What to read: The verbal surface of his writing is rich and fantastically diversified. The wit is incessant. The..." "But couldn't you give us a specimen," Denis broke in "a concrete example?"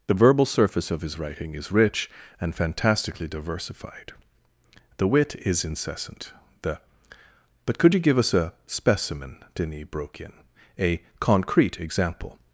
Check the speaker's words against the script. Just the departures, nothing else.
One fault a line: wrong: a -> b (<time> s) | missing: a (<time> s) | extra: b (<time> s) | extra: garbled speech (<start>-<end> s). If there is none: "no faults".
wrong: couldn't -> could (7.8 s)